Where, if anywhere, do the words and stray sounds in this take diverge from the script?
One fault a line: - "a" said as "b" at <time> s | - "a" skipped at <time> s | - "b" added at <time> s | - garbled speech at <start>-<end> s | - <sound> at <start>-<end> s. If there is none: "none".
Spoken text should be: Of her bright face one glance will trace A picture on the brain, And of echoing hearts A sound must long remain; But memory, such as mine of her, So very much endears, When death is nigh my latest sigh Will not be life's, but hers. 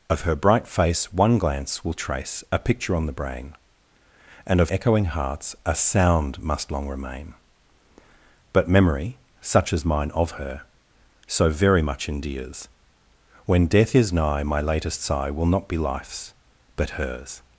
none